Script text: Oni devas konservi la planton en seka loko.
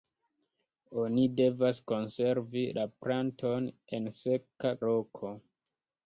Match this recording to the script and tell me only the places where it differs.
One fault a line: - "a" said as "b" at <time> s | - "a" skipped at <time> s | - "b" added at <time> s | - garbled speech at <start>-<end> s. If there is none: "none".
none